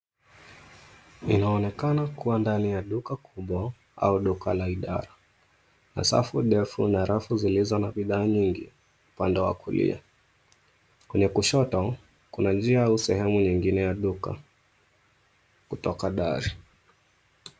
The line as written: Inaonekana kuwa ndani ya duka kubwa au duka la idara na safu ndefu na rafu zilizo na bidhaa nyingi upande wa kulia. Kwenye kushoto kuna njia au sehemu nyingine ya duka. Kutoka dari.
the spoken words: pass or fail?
pass